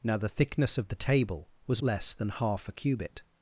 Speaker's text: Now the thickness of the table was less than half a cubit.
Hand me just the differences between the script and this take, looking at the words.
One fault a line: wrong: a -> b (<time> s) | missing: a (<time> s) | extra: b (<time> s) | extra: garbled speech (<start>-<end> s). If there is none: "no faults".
no faults